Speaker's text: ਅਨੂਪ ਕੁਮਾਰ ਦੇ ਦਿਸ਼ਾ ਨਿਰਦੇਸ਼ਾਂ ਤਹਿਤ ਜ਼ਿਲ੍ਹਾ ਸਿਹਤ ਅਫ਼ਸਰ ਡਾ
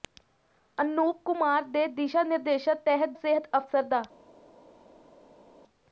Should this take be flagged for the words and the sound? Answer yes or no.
yes